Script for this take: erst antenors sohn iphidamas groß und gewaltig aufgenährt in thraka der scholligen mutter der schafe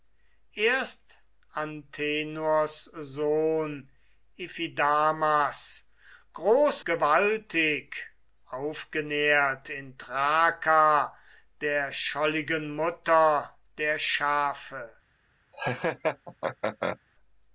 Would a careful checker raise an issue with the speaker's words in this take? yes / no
yes